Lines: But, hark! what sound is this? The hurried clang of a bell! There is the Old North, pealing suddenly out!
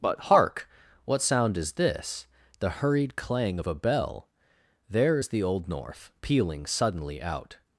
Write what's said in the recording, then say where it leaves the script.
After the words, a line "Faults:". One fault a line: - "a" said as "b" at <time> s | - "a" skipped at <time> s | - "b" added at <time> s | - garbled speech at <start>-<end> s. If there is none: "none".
But, hark! what sound is this? The hurried clang of a bell! There is the Old North, pealing suddenly out!
Faults:
none